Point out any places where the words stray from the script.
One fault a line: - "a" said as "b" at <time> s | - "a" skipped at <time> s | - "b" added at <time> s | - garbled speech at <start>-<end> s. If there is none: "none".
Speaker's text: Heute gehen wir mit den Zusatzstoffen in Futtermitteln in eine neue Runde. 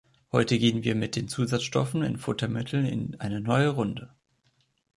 none